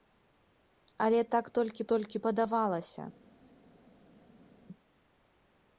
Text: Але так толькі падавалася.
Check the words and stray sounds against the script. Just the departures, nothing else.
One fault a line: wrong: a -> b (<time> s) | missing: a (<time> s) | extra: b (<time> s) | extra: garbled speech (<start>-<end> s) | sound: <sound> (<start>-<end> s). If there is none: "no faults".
extra: толькі (1.9 s)